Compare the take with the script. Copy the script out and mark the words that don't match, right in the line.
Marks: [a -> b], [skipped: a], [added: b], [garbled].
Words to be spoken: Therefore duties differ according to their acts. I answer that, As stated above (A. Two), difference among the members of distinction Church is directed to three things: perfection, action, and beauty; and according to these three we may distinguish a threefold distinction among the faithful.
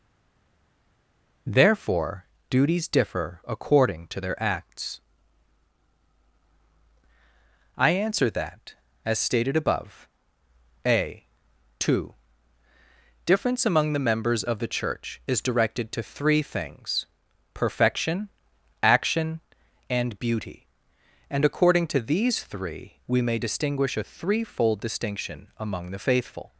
Therefore duties differ according to their acts. I answer that, As stated above (A. Two), difference among the members of [distinction -> the] Church is directed to three things: perfection, action, and beauty; and according to these three we may distinguish a threefold distinction among the faithful.